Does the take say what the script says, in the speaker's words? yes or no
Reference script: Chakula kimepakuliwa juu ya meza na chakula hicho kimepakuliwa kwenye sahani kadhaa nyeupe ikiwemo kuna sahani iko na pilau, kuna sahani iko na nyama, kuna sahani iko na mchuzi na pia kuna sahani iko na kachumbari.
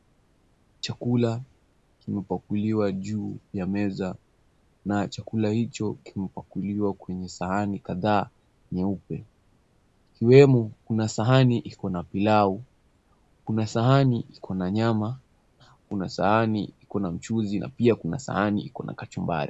yes